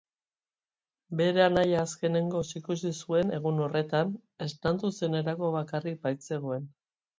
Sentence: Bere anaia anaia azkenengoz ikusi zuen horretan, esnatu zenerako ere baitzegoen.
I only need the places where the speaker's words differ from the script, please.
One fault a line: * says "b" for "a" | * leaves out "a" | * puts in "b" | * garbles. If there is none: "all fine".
* leaves out "anaia"
* puts in "egun"
* says "bakarrik" for "ere"